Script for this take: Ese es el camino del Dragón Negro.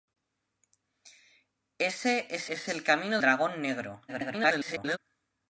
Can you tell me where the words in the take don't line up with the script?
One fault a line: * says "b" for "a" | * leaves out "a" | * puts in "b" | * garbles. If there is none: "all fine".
* puts in "es"
* leaves out "del"
* garbles